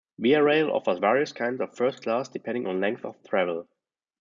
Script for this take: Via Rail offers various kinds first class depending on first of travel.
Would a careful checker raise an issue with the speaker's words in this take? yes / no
yes